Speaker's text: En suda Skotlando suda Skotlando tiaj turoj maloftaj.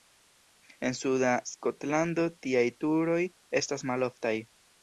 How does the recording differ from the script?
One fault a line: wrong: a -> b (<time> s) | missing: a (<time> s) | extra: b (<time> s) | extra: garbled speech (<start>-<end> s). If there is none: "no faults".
missing: suda Skotlando (2.3 s)
extra: estas (3.6 s)